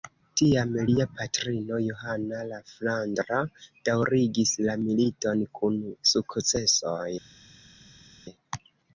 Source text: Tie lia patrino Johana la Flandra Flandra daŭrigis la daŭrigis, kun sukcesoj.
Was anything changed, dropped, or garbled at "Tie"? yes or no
yes